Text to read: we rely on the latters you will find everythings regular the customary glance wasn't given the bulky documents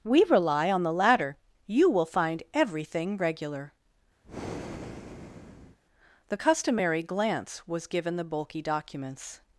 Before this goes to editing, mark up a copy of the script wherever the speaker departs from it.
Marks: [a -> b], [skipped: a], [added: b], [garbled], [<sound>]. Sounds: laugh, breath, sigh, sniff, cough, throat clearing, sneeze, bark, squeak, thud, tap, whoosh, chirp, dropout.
we rely on the [latters -> latter] you will find [everythings -> everything] regular [breath] the customary glance [wasn't -> was] given the bulky documents